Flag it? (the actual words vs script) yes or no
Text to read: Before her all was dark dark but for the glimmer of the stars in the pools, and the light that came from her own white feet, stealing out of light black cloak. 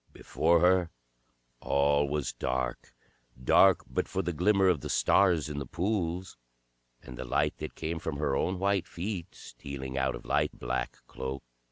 no